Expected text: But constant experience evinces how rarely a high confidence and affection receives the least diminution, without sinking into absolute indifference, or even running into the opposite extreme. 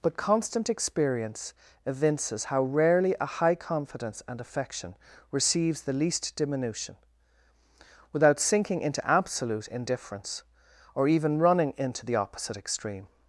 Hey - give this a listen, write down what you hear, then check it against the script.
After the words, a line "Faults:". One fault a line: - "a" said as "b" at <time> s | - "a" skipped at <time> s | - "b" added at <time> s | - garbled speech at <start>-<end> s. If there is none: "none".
But constant experience evinces how rarely a high confidence and affection receives the least diminution, without sinking into absolute indifference, or even running into the opposite extreme.
Faults:
none